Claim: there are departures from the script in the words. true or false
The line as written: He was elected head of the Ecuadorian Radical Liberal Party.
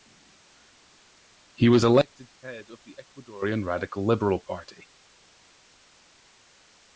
false